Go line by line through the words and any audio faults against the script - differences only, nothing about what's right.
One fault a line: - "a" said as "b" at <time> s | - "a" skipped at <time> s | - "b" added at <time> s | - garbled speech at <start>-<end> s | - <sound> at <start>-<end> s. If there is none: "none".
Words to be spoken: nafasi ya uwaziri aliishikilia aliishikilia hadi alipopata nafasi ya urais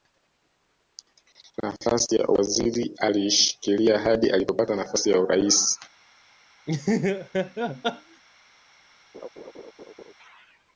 - "aliishikilia" skipped at 4.0 s
- laugh at 6.7-8.2 s
- laugh at 9.1-10.1 s